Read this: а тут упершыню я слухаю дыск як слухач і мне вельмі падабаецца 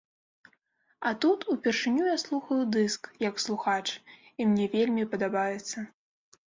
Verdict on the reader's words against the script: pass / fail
pass